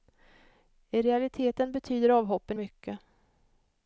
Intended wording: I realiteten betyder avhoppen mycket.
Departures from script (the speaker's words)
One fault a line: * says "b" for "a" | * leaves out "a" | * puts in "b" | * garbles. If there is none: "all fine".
all fine